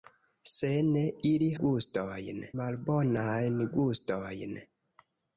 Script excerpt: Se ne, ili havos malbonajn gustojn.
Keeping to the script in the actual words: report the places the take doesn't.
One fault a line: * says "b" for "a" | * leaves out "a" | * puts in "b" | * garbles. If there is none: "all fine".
* says "gustojn" for "havos"